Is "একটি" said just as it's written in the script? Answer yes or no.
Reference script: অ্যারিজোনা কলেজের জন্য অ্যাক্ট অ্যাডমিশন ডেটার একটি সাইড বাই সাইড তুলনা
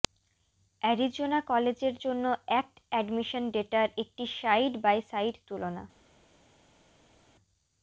yes